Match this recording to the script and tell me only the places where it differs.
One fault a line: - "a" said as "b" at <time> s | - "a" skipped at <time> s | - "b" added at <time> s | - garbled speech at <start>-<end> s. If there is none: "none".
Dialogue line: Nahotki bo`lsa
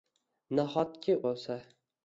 none